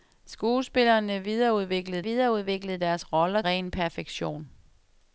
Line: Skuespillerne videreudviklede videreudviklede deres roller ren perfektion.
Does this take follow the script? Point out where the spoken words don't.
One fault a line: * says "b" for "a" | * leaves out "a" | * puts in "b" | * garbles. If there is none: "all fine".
all fine